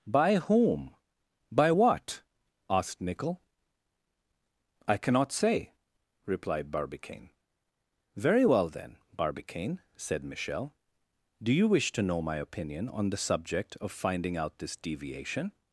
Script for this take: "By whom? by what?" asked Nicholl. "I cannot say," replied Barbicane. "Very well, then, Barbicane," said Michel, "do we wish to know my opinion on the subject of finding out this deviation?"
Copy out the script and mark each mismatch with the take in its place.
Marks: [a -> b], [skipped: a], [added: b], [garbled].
"By whom? by what?" asked Nicholl. "I cannot say," replied Barbicane. "Very well, then, Barbicane," said Michel, "do [we -> you] wish to know my opinion on the subject of finding out this deviation?"